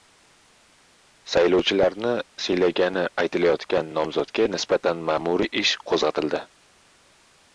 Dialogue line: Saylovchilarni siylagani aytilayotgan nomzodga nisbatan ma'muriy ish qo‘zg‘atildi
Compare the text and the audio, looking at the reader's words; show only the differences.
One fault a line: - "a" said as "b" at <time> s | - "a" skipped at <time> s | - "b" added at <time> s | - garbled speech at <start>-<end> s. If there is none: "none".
none